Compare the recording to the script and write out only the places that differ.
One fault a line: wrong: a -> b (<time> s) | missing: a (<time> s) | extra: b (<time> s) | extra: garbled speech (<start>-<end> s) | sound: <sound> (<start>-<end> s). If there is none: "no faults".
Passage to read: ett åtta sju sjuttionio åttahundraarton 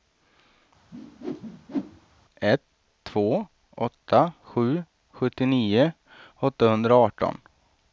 sound: whoosh (0.9-2.1 s)
extra: två (3.0 s)